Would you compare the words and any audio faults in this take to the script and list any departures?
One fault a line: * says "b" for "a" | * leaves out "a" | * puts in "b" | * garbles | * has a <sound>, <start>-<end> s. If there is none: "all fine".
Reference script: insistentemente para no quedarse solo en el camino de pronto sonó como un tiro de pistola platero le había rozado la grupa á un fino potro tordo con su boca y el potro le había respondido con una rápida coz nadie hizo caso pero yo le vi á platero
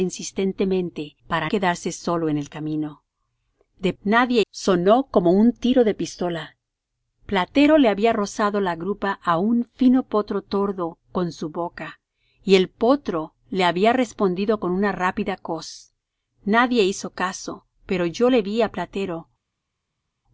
* leaves out "no"
* says "nadie" for "pronto"